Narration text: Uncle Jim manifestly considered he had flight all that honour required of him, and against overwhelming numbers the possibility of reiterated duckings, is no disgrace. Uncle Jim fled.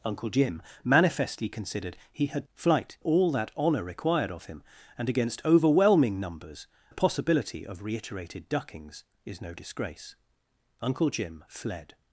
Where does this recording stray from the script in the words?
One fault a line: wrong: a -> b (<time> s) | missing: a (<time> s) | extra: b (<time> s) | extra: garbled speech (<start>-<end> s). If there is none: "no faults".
no faults